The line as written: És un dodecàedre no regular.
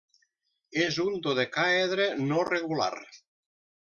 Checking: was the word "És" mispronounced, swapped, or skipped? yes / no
no